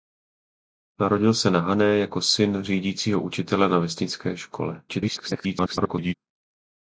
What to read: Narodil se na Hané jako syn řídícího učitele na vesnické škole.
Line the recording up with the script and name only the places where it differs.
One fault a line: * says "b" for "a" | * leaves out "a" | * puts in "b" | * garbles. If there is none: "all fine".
* garbles